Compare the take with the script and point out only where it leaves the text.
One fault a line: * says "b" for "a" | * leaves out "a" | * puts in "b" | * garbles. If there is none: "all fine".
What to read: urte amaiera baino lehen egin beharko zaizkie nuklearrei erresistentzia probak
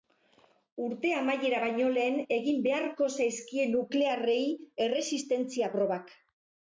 all fine